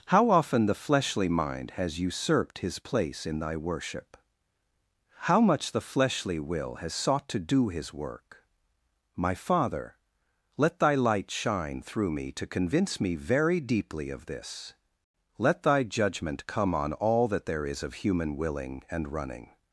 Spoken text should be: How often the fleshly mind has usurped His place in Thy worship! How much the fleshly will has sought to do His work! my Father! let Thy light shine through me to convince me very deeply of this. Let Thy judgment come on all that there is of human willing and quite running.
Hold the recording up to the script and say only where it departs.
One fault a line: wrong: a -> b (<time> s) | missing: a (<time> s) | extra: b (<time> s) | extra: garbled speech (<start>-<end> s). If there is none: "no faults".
missing: quite (19.1 s)